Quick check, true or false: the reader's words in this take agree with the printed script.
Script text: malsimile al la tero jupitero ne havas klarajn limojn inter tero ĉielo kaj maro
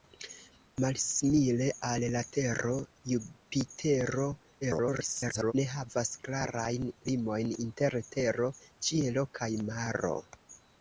false